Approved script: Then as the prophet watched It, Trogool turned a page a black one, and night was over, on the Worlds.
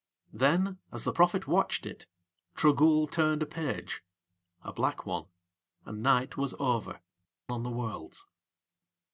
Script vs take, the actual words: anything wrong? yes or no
no